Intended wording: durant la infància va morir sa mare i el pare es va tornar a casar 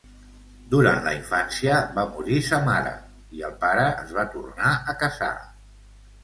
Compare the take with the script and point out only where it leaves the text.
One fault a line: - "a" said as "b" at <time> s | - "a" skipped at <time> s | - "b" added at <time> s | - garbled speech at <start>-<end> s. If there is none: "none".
none